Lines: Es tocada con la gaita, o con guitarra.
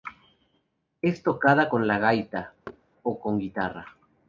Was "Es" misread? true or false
false